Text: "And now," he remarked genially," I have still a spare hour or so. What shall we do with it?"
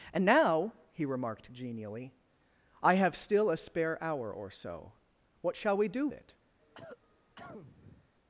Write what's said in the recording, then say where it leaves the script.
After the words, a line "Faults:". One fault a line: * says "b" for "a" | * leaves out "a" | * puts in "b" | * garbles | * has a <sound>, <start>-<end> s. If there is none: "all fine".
"And now," he remarked genially," I have still a spare hour or so. What shall we do it?"
Faults:
* leaves out "with"
* has a cough, 6.6-8.1 s